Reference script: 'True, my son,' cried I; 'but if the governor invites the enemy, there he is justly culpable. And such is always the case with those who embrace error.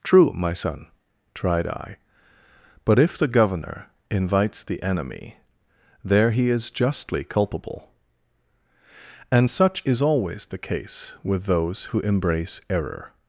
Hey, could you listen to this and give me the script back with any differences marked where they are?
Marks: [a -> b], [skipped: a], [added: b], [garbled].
'True, my son,' [cried -> tried] I; 'but if the governor invites the enemy, there he is justly culpable. And such is always the case with those who embrace error.